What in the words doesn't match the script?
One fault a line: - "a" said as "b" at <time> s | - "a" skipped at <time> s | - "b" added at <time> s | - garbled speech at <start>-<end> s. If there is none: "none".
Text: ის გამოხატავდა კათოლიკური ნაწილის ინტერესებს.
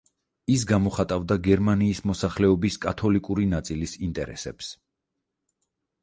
- "გერმანიის მოსახლეობის" added at 1.5 s